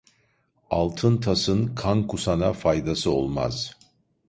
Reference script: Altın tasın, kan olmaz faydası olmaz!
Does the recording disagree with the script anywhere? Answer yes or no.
yes